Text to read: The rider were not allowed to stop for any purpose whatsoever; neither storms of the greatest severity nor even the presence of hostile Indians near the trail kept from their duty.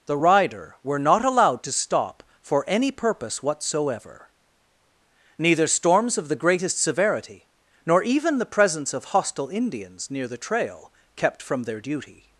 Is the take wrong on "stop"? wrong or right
right